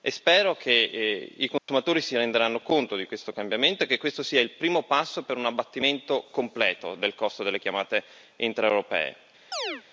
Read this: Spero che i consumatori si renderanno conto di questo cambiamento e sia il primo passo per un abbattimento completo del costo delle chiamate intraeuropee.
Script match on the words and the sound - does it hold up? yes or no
no